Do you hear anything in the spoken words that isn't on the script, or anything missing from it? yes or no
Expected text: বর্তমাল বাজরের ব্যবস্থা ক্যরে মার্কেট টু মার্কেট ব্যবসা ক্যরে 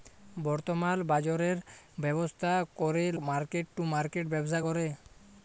no